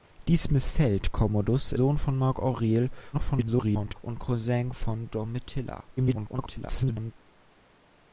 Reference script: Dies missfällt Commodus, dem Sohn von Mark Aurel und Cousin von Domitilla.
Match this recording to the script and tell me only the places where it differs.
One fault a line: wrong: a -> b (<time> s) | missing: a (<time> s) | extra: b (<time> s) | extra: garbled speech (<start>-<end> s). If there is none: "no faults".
missing: dem (1.8 s)
extra: garbled speech (3.1-3.9 s)
extra: garbled speech (6.0-7.1 s)